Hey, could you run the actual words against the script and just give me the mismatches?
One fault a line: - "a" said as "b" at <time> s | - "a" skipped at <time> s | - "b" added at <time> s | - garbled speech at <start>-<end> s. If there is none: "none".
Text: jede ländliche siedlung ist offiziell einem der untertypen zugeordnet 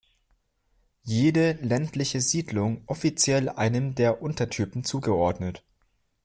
- "ist" skipped at 2.9 s